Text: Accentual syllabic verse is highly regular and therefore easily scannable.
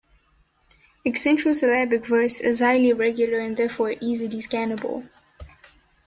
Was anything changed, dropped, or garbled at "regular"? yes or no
no